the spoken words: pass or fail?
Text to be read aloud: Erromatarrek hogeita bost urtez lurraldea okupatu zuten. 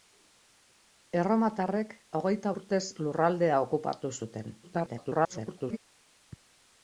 fail